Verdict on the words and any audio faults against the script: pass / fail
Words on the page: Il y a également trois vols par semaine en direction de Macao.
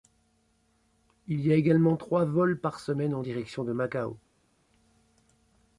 pass